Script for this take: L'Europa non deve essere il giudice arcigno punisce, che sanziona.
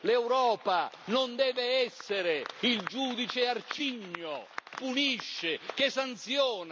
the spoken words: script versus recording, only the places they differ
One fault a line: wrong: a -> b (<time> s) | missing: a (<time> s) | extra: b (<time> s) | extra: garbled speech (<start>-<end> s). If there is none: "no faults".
no faults